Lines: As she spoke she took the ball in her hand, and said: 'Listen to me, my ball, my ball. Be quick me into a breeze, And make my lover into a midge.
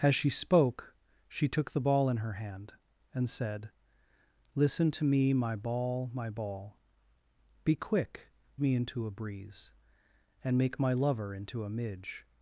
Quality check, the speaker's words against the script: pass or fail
pass